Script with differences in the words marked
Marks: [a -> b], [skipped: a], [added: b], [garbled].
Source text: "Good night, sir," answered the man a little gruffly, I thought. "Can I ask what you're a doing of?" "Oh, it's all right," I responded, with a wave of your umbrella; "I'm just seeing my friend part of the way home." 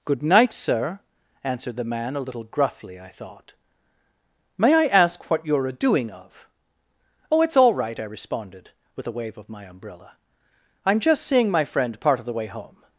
"Good night, sir," answered the man a little gruffly, I thought. ["Can -> May] I ask what you're a doing of?" "Oh, it's all right," I responded, with a wave of [your -> my] umbrella; "I'm just seeing my friend part of the way home."